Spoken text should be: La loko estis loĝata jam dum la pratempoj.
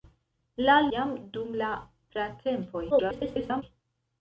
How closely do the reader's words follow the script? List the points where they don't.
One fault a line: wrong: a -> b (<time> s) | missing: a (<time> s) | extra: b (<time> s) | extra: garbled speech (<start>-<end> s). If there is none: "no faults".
missing: loko estis loĝata (0.8 s)
extra: garbled speech (2.9-3.6 s)